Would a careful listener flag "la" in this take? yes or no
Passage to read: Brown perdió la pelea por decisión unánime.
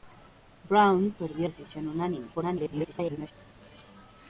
yes